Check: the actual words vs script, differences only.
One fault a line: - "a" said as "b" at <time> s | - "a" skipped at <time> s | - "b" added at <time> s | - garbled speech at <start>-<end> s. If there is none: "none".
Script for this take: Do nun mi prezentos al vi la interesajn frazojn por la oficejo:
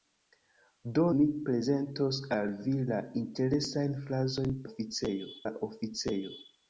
- "nun" skipped at 1.0 s
- "por" said as "oficejo" at 4.7 s